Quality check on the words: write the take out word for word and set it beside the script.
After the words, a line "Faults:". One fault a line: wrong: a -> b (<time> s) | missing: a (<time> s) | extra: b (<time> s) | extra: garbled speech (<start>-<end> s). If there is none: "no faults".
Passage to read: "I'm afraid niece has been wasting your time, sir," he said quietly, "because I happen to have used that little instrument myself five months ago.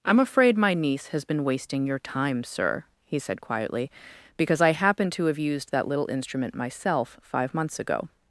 "I'm afraid my niece has been wasting your time, sir," he said quietly, "because I happen to have used that little instrument myself five months ago.
Faults:
extra: my (0.6 s)